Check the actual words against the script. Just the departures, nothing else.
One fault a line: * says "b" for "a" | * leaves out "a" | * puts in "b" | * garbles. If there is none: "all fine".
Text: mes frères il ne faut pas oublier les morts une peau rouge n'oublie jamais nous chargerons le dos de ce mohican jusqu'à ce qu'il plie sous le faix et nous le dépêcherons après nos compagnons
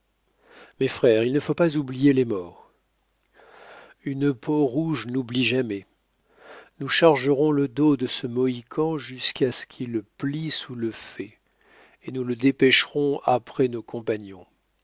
all fine